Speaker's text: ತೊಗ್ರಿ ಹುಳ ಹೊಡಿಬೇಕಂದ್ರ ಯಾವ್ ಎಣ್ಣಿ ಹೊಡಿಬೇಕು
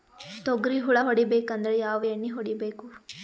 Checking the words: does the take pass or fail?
pass